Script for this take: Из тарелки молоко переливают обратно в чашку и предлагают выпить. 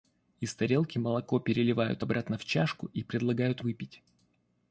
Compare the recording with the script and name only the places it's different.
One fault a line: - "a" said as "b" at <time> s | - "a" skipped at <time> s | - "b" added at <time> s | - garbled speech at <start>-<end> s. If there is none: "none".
none